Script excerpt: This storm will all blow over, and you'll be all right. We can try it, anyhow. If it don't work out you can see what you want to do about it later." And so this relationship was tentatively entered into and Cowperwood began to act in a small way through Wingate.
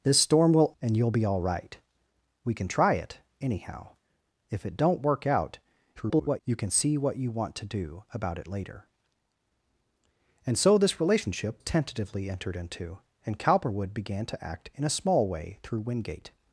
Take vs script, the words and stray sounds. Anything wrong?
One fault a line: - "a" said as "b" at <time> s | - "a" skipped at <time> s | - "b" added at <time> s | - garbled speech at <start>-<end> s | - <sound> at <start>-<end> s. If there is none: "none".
- "all blow over" skipped at 0.7 s
- garbled speech at 6.0-6.4 s
- "was" skipped at 11.6 s